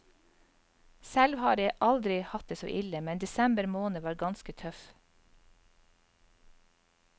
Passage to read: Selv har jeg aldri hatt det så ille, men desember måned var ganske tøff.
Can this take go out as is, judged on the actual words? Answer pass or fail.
pass